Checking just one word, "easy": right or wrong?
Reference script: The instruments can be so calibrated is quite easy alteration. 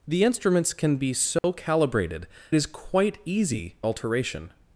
right